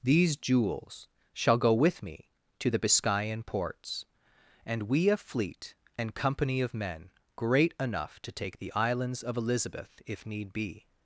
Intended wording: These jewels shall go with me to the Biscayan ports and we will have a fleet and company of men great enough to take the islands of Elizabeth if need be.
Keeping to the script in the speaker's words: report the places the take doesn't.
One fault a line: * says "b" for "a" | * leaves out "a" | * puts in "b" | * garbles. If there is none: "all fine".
* leaves out "will have"